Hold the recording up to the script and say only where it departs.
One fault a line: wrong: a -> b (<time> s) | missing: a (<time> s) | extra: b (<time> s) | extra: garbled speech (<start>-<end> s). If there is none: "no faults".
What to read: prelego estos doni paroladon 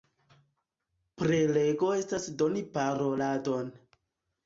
wrong: estos -> estas (2.0 s)